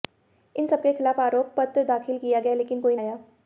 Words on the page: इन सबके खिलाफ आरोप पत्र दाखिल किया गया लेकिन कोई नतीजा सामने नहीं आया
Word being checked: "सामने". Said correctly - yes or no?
no